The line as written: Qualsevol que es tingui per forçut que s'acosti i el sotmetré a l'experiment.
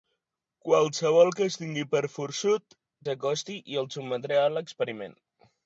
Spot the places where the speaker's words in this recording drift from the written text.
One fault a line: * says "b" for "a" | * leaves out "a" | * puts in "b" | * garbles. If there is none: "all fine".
* leaves out "que"